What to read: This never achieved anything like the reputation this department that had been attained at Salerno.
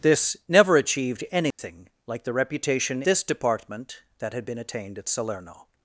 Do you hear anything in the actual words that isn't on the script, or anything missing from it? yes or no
no